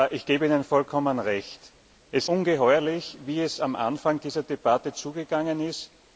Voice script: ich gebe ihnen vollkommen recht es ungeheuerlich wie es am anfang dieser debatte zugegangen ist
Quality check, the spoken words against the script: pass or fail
pass